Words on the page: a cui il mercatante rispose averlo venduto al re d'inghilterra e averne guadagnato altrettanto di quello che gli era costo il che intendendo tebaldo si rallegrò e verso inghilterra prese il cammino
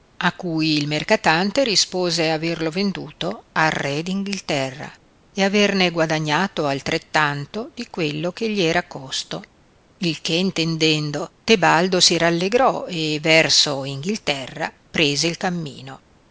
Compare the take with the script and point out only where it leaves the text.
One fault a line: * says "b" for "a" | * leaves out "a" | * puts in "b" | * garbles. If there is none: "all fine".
all fine